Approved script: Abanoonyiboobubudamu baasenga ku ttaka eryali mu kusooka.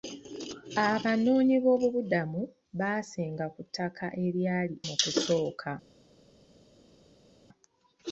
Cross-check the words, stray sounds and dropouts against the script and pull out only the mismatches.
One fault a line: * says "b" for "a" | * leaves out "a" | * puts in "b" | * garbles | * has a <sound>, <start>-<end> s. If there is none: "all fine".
all fine